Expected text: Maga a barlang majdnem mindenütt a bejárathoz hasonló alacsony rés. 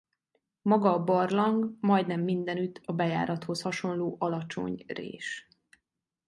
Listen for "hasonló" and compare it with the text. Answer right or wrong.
right